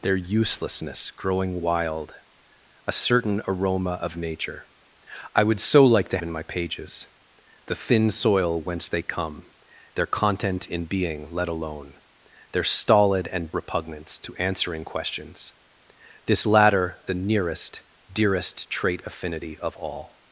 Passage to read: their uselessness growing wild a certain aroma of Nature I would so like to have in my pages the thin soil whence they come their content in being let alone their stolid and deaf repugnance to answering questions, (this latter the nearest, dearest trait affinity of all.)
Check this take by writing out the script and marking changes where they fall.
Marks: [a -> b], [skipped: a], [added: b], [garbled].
their uselessness growing wild a certain aroma of Nature I would so like to [skipped: have] in my pages the thin soil whence they come their content in being let alone their stolid and [skipped: deaf] repugnance to answering questions, (this latter the nearest, dearest trait affinity of all.)